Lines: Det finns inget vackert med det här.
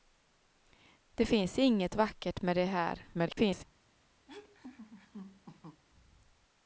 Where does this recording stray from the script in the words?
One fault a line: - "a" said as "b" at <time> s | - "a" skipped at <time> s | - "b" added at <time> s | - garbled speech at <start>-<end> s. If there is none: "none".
- garbled speech at 3.1-3.6 s